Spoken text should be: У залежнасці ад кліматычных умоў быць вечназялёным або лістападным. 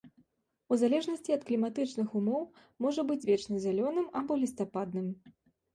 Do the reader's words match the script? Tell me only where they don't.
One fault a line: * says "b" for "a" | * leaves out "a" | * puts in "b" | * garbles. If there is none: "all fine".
* puts in "можа"